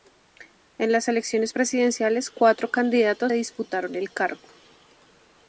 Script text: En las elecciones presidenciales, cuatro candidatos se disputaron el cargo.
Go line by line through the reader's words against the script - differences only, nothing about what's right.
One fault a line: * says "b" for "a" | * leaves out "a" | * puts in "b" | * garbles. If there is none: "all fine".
* leaves out "se"